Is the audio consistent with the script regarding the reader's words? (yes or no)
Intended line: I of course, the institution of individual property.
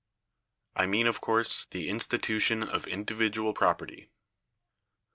no